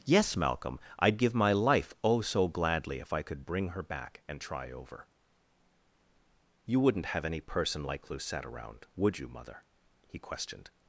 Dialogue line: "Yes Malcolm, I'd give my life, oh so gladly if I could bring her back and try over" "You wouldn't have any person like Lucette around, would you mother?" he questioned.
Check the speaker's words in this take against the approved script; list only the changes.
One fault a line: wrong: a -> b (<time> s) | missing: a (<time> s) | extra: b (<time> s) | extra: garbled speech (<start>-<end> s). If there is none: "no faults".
no faults